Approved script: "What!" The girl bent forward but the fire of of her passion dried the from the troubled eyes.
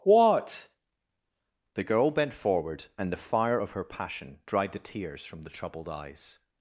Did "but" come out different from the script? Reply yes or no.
yes